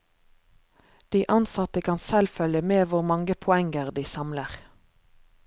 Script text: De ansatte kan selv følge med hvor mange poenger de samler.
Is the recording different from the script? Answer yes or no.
no